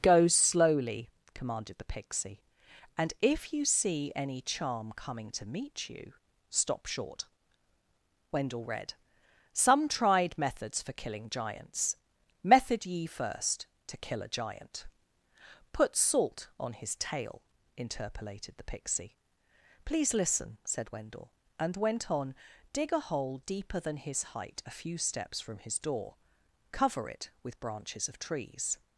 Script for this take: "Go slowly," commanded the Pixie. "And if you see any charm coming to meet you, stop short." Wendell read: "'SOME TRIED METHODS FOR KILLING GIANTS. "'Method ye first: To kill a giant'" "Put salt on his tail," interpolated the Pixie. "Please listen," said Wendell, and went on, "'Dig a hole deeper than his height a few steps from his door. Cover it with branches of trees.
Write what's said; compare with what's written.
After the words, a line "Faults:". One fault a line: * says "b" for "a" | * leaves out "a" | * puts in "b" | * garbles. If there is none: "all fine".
"Go slowly," commanded the Pixie. "And if you see any charm coming to meet you, stop short." Wendell read: "'SOME TRIED METHODS FOR KILLING GIANTS. "'Method ye first: To kill a giant'" "Put salt on his tail," interpolated the Pixie. "Please listen," said Wendell, and went on, "'Dig a hole deeper than his height a few steps from his door. Cover it with branches of trees.
Faults:
all fine